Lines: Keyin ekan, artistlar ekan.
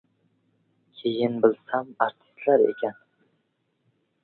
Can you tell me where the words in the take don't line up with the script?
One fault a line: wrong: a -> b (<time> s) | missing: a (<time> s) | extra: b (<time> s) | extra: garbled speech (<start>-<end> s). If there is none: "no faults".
wrong: ekan -> bilsam (1.4 s)